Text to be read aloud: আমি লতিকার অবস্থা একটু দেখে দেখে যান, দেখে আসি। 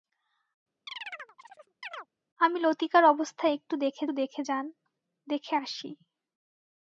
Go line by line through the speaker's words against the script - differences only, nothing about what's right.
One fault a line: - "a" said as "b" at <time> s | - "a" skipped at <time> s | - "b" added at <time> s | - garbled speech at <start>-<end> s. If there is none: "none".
none